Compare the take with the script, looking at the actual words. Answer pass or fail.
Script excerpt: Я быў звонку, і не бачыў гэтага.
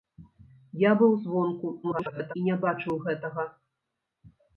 fail